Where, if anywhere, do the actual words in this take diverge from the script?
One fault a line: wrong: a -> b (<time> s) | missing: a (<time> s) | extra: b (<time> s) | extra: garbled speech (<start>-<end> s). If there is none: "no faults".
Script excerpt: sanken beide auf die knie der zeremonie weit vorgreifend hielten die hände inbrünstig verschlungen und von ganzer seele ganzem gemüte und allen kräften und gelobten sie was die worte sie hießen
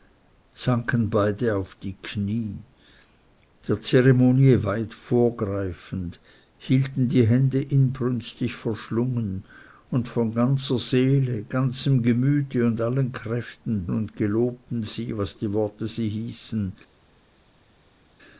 no faults